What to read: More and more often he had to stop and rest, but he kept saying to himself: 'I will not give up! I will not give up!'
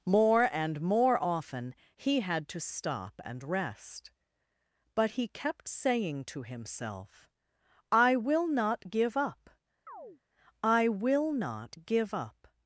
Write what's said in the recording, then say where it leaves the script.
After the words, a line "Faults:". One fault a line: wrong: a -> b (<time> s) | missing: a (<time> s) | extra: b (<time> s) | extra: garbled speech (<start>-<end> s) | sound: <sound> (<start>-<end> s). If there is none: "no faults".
More and more often he had to stop and rest, but he kept saying to himself: 'I will not give up! I will not give up!'
Faults:
sound: chirp (9.9-10.2 s)